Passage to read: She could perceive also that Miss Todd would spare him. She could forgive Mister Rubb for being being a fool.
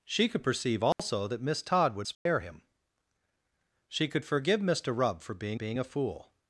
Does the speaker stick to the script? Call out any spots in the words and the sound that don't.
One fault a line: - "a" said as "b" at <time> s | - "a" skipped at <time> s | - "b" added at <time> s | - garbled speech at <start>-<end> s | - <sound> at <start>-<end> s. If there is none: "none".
- dropout at 0.9-1.0 s
- dropout at 2.1-2.3 s